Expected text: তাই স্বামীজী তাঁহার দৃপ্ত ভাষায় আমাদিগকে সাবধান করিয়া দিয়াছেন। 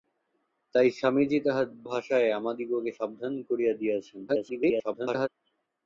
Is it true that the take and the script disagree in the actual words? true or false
true